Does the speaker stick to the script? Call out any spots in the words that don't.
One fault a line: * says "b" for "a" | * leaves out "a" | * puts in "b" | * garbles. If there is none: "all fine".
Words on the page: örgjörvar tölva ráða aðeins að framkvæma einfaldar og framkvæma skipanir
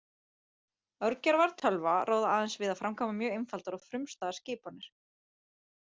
* puts in "við"
* puts in "mjög"
* says "frumstæðar" for "framkvæma"